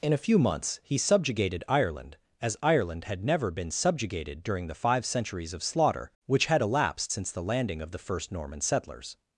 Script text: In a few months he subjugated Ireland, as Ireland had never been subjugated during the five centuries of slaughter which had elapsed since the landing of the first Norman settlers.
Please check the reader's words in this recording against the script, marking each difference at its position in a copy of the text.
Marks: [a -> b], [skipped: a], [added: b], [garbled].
In a few months he subjugated Ireland, as Ireland had never been subjugated during the five centuries of slaughter which had elapsed since the landing of the first Norman settlers.